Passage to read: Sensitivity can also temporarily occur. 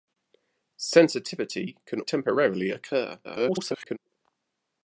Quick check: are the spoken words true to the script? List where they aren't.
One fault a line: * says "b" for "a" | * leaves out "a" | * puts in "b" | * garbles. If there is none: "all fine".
* leaves out "also"
* garbles